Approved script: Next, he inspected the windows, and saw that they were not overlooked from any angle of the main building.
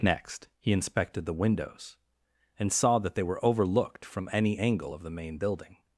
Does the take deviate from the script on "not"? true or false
true